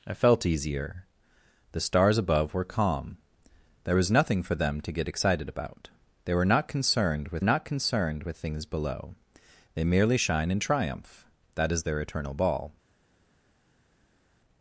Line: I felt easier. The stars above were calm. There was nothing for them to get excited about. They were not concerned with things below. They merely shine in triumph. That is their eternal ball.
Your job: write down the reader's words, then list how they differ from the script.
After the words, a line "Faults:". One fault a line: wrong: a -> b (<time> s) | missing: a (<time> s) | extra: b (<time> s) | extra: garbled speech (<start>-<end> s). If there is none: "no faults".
I felt easier. The stars above were calm. There was nothing for them to get excited about. They were not concerned with not concerned with things below. They merely shine in triumph. That is their eternal ball.
Faults:
extra: not concerned with (7.4 s)